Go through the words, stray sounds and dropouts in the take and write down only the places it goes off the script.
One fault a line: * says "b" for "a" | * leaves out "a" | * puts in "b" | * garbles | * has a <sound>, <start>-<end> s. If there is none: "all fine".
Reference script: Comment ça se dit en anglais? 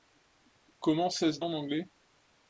* leaves out "dit"